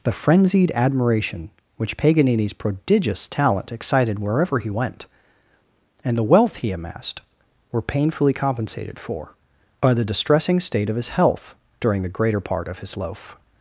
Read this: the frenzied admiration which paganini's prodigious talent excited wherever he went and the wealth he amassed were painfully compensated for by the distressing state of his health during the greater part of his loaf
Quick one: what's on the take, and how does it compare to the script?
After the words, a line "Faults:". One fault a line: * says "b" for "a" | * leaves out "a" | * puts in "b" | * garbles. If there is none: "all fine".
the frenzied admiration which paganini's prodigious talent excited wherever he went and the wealth he amassed were painfully compensated for by the distressing state of his health during the greater part of his loaf
Faults:
all fine